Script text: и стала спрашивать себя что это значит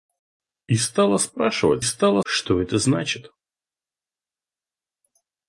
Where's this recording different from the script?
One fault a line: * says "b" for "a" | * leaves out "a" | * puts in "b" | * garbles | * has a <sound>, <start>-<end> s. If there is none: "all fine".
* says "стала" for "себя"